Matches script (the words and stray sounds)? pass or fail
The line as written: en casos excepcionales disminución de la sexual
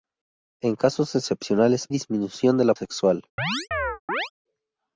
fail